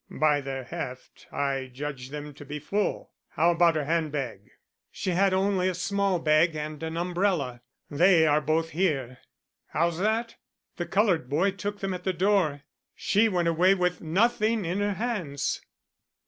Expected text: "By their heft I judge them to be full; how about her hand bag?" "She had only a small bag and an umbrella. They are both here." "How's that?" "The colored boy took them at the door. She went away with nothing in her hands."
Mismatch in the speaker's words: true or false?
false